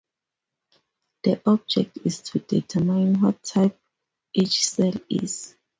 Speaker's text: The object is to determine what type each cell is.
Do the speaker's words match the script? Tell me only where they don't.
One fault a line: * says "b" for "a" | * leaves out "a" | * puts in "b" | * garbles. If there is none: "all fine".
all fine